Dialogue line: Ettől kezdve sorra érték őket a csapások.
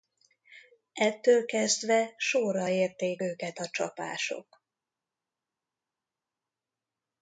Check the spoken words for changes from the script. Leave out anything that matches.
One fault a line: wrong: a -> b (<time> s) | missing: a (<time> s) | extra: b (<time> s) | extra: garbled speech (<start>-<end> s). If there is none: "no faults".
no faults